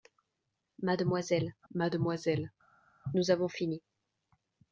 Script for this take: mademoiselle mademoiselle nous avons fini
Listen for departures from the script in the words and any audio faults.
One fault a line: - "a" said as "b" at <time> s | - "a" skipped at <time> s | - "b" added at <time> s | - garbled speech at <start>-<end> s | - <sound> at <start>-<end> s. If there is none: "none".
none